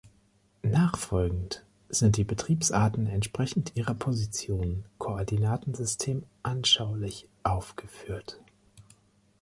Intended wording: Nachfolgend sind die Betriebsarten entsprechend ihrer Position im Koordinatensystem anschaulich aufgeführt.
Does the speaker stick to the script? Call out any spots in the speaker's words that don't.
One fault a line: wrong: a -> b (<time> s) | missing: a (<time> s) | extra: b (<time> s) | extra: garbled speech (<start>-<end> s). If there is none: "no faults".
missing: im (4.8 s)